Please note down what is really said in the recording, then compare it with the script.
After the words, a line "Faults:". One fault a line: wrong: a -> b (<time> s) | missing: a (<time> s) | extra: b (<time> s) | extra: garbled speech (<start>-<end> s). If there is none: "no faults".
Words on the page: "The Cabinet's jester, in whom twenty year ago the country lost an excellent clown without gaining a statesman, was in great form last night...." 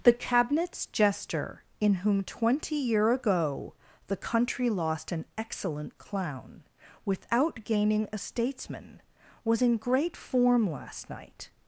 "The Cabinet's jester, in whom twenty year ago the country lost an excellent clown without gaining a statesman, was in great form last night...."
Faults:
no faults